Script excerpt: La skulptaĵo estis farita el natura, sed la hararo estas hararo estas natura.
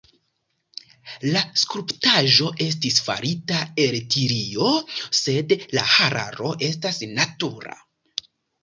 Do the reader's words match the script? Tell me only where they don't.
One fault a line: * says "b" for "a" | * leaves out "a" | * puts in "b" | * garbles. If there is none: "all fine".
* says "tilio" for "natura"
* leaves out "hararo estas"